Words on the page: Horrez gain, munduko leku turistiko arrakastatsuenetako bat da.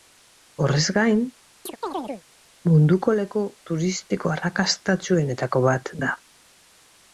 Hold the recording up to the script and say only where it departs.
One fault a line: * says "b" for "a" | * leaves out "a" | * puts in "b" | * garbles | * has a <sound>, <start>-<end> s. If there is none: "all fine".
* has a chirp, 1.7-2.2 s